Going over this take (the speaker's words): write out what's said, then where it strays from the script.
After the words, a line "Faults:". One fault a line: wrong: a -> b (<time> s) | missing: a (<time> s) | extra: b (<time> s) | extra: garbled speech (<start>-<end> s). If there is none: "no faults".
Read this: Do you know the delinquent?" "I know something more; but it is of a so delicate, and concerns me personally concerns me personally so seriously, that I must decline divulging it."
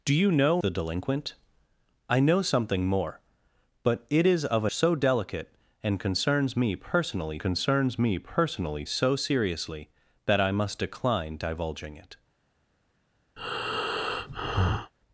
Do you know the delinquent?" "I know something more; but it is of a so delicate, and concerns me personally concerns me personally so seriously, that I must decline divulging it."
Faults:
no faults